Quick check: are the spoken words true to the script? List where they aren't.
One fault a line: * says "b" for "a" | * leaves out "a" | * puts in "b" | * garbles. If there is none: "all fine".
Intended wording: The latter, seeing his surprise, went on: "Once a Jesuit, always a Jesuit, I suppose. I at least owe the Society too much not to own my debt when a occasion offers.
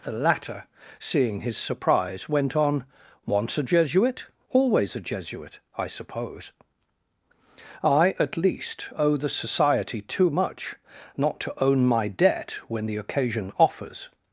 * says "the" for "a"